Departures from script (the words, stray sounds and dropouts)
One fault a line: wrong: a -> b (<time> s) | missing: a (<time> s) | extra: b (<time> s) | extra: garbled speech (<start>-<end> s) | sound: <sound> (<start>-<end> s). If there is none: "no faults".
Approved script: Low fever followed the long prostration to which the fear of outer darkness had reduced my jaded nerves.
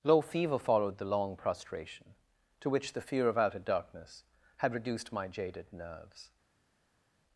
no faults